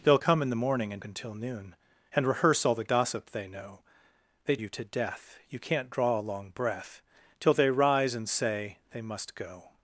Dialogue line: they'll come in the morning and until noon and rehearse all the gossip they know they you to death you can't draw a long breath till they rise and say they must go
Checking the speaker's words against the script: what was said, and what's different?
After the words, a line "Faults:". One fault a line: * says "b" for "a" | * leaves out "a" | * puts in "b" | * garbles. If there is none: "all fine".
they'll come in the morning and until noon and rehearse all the gossip they know they you to death you can't draw a long breath till they rise and say they must go
Faults:
all fine